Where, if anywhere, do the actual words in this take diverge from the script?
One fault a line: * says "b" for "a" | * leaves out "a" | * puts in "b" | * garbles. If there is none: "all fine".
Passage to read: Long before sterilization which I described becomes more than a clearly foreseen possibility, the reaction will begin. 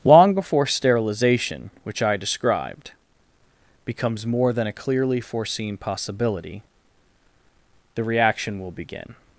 all fine